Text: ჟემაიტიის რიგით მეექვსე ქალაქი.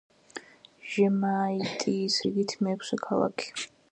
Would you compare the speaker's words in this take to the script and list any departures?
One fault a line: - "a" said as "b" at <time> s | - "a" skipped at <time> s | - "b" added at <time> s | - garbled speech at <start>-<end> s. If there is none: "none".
none